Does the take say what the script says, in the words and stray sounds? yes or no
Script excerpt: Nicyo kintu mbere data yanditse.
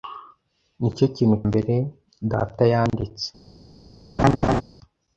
no